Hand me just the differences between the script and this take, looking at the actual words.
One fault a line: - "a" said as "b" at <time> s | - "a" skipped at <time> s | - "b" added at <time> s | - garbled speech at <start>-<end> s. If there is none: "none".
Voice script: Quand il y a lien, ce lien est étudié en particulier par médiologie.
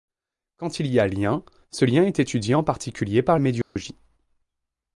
none